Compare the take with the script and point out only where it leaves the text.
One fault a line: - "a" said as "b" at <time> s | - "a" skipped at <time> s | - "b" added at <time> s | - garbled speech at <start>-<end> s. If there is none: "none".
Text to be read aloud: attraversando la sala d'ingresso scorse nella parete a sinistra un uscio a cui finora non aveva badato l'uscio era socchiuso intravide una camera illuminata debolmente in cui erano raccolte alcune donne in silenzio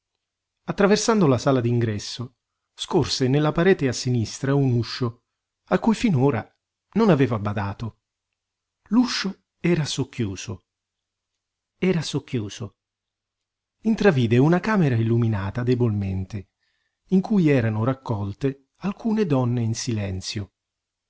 - "era socchiuso" added at 11.8 s